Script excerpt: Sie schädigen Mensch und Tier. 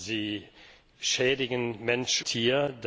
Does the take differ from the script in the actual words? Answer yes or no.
yes